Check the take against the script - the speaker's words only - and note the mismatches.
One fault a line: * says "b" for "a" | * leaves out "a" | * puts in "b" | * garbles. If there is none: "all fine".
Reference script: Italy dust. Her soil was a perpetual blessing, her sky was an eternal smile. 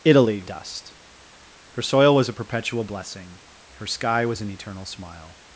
all fine